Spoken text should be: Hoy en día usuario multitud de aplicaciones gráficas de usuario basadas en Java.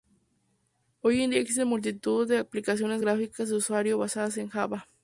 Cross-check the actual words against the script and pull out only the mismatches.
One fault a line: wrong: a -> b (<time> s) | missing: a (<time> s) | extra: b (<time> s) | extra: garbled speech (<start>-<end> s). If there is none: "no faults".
wrong: usuario -> existen (1.4 s)